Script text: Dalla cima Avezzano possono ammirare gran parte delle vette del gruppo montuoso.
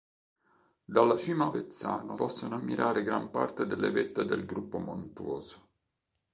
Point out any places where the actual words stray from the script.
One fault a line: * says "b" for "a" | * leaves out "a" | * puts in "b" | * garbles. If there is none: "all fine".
all fine